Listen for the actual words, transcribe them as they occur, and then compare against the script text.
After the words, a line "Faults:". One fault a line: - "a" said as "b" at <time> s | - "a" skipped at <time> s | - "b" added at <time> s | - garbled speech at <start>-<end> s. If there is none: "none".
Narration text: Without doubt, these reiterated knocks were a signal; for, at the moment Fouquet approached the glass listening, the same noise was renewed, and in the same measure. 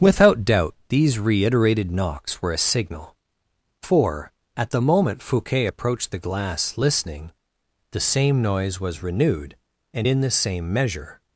Without doubt, these reiterated knocks were a signal; for, at the moment Fouquet approached the glass listening, the same noise was renewed, and in the same measure.
Faults:
none